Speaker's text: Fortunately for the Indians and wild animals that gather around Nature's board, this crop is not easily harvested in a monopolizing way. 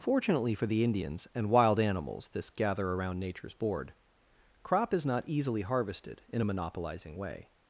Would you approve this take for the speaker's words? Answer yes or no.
no